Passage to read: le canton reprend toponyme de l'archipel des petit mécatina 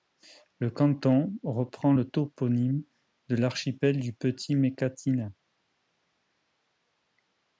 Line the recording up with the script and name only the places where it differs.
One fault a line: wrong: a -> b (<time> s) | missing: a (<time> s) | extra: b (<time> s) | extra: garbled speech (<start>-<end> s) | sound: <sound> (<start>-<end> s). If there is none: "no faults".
extra: le (1.9 s)
wrong: des -> du (4.0 s)